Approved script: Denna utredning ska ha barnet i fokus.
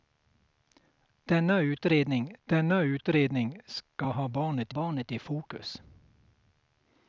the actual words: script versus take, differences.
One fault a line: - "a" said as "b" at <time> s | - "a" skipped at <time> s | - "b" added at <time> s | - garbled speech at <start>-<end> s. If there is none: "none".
- "denna utredning" added at 2.4 s
- "barnet" added at 4.7 s